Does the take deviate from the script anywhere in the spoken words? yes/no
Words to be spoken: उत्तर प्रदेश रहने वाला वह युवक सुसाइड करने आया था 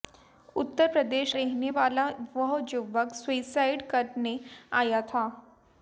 no